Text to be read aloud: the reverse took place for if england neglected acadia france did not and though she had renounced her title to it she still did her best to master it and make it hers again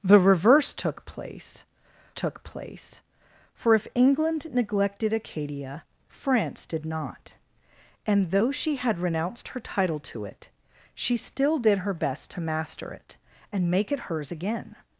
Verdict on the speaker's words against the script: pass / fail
fail